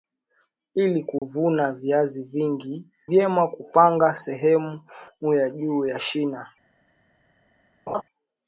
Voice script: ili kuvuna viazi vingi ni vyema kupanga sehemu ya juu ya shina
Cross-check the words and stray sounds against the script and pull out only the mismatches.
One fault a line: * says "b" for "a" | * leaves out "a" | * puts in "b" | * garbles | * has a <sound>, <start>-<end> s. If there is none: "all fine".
* has a dropout, 1.2-1.2 s
* leaves out "ni"
* has a laugh, 7.9-8.0 s